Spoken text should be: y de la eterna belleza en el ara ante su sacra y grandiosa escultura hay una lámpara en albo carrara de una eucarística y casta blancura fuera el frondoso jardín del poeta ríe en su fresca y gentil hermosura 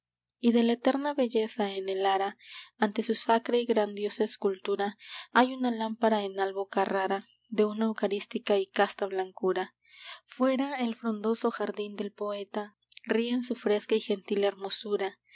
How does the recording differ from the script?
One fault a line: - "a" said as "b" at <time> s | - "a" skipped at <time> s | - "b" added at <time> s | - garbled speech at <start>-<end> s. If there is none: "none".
none